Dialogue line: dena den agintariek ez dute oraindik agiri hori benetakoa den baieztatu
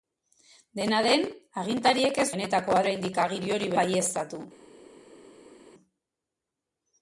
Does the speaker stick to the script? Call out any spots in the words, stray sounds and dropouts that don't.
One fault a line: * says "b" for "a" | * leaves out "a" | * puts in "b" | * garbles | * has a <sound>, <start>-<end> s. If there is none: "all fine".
* says "benetakoa" for "dute"
* leaves out "benetakoa den"